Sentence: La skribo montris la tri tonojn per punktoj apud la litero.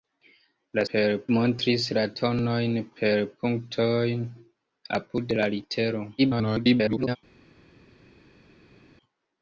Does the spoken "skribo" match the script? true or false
false